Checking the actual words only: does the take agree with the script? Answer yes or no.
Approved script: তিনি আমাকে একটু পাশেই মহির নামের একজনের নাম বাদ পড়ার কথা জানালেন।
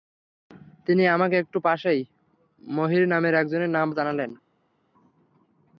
no